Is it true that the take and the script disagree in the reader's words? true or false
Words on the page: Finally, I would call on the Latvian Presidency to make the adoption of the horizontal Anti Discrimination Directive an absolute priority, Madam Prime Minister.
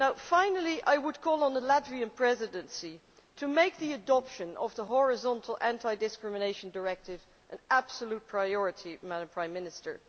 false